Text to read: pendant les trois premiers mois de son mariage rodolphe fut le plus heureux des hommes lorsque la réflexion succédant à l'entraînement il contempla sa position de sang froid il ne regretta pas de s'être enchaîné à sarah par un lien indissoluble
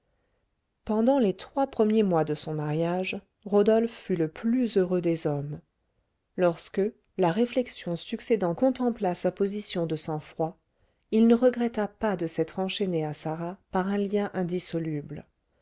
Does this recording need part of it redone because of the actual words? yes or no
yes